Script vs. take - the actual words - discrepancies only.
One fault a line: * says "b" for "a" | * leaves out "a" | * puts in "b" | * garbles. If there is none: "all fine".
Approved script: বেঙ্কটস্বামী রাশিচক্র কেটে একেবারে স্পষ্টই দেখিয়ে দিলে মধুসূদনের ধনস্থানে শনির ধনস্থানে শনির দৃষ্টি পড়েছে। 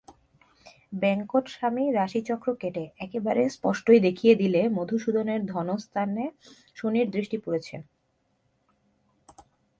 * leaves out "ধনস্থানে শনির"